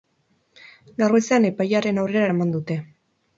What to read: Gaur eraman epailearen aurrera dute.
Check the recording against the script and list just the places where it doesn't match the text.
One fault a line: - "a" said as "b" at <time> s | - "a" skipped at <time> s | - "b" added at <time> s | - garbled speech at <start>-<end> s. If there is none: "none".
- "eraman" said as "goizean" at 1.2 s
- "eraman" added at 2.3 s